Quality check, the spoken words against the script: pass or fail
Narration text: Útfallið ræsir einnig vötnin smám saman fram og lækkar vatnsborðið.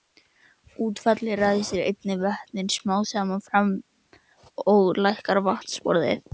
pass